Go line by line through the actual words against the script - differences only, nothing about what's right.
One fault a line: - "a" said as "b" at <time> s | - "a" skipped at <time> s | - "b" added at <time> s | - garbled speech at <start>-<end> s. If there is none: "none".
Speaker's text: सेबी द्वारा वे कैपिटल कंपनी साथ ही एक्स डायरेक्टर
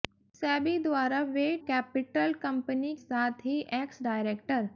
none